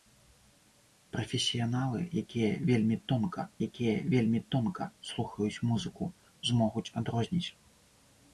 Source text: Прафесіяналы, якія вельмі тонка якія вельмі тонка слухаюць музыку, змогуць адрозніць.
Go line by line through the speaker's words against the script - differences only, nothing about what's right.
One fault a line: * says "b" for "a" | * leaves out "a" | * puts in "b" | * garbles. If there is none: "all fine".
all fine